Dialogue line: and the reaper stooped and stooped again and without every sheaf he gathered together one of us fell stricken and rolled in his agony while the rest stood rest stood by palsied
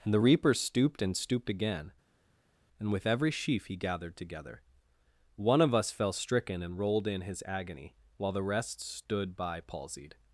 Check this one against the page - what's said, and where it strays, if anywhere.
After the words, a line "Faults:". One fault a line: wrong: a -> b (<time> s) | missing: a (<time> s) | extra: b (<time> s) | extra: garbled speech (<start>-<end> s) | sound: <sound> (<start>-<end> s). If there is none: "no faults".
and the reaper stooped and stooped again and with every sheaf he gathered together one of us fell stricken and rolled in his agony while the rest stood by palsied
Faults:
wrong: without -> with (2.9 s)
missing: rest stood (9.4 s)